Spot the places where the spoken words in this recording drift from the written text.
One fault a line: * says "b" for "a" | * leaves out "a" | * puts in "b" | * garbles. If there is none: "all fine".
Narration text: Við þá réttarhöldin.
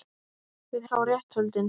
all fine